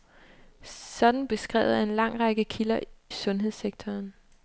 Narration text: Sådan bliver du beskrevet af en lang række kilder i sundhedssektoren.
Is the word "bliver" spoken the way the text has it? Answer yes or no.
no